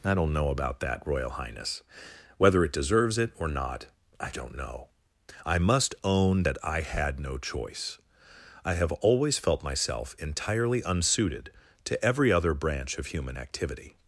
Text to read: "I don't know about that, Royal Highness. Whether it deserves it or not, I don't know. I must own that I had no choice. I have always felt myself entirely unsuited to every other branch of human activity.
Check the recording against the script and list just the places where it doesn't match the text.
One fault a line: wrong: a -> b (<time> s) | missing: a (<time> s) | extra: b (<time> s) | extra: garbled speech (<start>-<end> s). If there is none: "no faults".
no faults